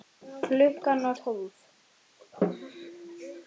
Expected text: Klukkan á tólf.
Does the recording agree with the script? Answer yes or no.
yes